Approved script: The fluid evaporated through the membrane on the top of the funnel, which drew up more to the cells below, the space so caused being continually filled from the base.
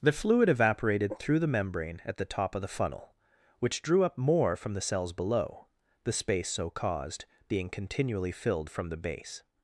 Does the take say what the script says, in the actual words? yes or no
no